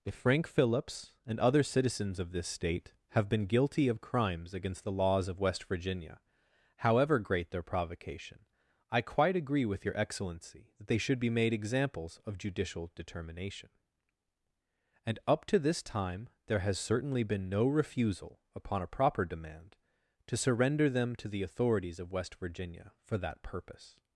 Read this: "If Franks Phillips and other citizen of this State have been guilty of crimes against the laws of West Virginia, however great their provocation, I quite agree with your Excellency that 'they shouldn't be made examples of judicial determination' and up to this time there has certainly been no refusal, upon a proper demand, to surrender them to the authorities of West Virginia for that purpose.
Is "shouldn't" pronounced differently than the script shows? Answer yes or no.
yes